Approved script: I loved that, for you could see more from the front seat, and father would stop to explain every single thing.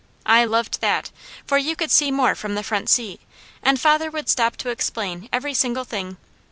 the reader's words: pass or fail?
pass